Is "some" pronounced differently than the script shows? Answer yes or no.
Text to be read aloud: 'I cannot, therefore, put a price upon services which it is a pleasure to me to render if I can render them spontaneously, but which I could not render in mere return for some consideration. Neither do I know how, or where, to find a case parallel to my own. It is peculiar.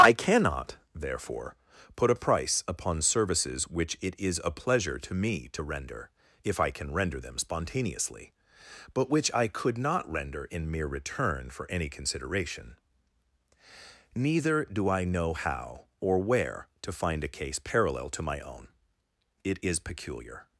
yes